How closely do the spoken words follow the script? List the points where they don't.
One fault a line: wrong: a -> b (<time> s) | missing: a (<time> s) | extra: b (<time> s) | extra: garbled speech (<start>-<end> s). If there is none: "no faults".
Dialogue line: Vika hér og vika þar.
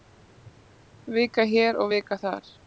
no faults